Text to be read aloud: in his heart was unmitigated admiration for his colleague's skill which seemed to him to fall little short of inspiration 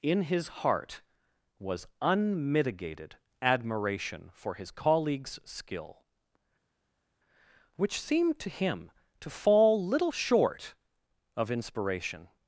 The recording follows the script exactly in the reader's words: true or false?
true